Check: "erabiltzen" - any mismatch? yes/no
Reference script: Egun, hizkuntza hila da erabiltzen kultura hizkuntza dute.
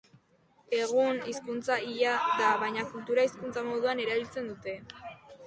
yes